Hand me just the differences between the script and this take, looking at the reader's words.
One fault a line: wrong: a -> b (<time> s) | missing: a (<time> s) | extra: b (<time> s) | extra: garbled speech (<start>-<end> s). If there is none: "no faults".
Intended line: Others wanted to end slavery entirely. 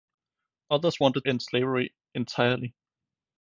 missing: to (1.3 s)